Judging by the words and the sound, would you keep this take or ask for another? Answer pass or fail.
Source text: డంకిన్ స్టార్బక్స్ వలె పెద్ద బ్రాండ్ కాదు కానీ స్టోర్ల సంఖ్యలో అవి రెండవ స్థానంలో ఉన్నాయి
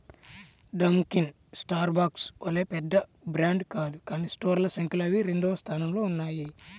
pass